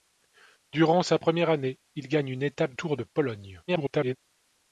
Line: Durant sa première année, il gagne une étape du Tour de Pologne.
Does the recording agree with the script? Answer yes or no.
no